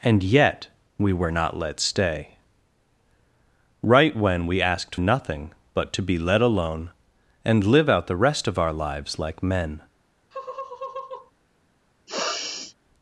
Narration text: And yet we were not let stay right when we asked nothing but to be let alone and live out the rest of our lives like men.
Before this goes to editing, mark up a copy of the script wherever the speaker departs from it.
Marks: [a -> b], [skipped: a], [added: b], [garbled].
And yet we were not let stay right when we asked nothing but to be let alone and live out the rest of our lives like men.